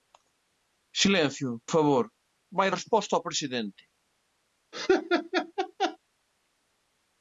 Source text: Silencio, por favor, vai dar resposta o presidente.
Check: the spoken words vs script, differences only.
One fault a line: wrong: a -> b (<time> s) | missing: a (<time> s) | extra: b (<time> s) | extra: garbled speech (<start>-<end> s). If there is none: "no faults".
missing: por (1.5 s)
missing: dar (2.7 s)